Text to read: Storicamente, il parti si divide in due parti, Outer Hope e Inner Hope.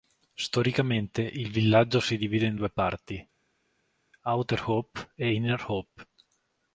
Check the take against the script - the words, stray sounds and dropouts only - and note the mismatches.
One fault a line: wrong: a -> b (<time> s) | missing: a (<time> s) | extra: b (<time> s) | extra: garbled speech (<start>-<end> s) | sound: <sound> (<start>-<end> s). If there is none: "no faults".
wrong: parti -> villaggio (1.5 s)